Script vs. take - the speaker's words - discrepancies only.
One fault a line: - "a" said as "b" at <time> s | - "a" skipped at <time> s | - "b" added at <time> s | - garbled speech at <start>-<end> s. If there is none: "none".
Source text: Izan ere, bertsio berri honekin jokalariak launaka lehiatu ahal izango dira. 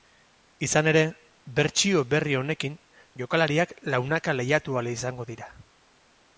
none